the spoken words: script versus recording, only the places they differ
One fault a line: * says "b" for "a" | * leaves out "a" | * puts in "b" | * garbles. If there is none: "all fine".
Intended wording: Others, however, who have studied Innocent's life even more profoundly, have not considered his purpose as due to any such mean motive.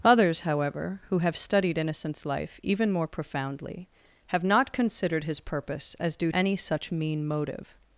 * leaves out "to"